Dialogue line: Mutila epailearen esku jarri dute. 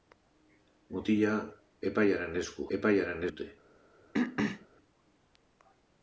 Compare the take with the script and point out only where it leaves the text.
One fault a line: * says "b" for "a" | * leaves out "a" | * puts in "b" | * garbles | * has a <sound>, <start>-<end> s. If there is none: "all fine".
* says "epailearen" for "jarri"
* has a throat clearing, 4.1-4.7 s